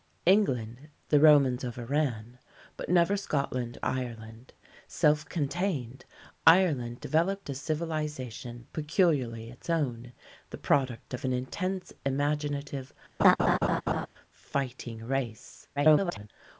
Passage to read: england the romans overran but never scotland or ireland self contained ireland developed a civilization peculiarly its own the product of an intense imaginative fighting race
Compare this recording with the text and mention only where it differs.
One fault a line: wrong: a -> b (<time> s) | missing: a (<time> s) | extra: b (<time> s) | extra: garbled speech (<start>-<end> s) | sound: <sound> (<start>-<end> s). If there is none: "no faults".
missing: or (3.8 s)
sound: laugh (13.2-14.1 s)
extra: garbled speech (15.8-16.3 s)